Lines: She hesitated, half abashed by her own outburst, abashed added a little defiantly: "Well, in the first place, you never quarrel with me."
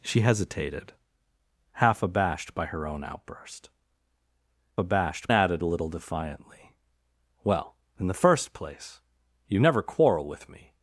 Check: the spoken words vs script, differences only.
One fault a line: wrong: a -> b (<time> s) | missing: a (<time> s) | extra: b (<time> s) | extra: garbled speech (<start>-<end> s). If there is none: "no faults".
no faults